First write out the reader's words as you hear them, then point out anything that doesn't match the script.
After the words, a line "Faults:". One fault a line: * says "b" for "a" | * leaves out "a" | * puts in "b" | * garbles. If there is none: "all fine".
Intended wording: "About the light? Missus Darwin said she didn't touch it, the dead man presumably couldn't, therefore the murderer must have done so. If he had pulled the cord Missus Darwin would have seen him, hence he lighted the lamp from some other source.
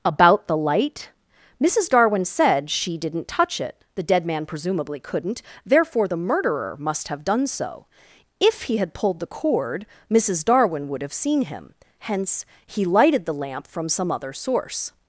"About the light? Missus Darwin said she didn't touch it, the dead man presumably couldn't, therefore the murderer must have done so. If he had pulled the cord Missus Darwin would have seen him, hence he lighted the lamp from some other source.
Faults:
all fine